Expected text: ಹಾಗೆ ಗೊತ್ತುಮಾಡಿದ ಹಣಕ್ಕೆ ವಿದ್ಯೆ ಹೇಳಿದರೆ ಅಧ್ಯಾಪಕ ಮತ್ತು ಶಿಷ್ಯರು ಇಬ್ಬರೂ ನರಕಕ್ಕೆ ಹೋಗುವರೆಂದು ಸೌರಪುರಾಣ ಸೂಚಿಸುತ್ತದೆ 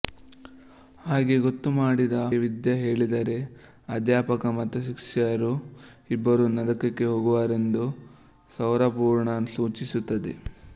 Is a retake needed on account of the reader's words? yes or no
yes